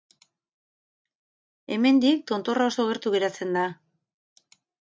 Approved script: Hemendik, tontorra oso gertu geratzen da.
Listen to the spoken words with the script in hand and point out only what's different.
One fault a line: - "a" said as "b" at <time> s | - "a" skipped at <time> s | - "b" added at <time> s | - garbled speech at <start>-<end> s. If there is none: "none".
none